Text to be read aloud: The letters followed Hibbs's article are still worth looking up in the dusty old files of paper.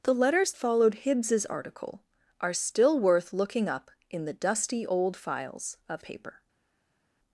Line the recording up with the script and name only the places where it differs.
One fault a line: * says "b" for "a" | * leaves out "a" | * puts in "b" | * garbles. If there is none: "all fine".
all fine